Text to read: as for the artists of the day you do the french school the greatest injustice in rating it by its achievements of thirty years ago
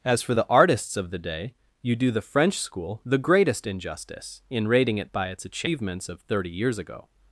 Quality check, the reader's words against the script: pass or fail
pass